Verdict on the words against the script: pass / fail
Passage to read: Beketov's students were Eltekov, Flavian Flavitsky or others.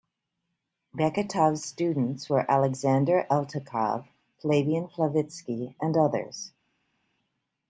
fail